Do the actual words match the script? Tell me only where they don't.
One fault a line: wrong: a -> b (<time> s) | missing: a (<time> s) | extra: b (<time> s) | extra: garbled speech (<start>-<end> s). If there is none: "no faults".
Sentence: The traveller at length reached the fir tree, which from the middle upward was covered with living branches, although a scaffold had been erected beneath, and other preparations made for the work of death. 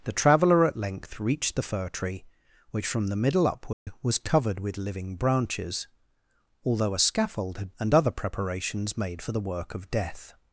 missing: been erected beneath (7.7 s)